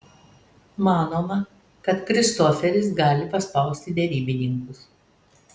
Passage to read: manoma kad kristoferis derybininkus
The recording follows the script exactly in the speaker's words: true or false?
false